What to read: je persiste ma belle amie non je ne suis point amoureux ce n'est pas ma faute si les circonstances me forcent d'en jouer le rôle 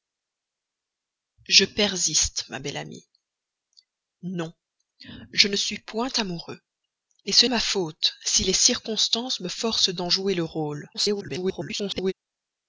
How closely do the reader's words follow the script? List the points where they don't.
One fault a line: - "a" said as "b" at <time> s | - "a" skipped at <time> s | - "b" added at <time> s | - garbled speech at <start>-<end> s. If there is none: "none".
- "n'est pas" skipped at 7.5 s
- garbled speech at 10.9-12.1 s